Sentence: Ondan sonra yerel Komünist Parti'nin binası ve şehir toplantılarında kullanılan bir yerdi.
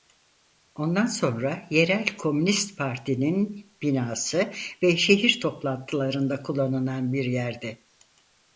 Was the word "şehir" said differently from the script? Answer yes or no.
no